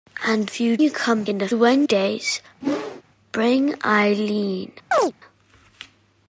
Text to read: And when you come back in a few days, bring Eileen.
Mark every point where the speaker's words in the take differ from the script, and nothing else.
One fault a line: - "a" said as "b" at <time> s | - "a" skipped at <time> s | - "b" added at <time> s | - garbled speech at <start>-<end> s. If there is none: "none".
- "when" said as "few" at 0.4 s
- "back" skipped at 1.2 s
- "few" said as "when" at 1.5 s